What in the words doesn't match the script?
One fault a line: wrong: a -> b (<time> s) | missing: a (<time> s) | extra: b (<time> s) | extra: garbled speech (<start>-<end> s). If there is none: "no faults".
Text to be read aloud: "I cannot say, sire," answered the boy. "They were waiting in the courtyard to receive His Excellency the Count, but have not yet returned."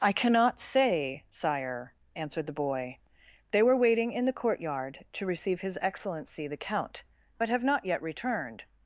no faults